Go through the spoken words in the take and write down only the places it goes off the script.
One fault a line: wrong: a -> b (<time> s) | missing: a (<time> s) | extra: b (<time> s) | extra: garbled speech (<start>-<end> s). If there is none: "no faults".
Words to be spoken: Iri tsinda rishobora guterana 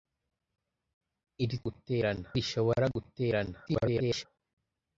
wrong: tsinda -> guterana (1.7 s)
extra: garbled speech (3.7-4.3 s)